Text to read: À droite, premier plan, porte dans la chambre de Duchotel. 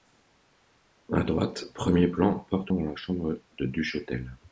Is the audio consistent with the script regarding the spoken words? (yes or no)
yes